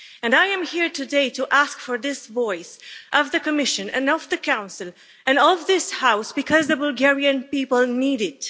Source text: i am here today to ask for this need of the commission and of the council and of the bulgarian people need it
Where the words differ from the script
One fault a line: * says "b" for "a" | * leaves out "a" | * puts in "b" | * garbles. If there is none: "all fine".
* says "voice" for "need"
* puts in "this house because"